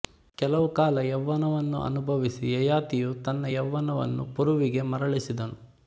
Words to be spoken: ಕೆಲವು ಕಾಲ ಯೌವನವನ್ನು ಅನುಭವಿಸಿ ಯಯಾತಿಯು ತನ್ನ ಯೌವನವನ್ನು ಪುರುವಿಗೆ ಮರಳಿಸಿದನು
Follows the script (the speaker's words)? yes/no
yes